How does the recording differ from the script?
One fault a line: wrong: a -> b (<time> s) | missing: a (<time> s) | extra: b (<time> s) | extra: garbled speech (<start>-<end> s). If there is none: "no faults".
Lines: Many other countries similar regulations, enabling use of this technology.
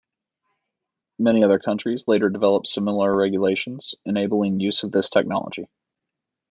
extra: later developed (2.0 s)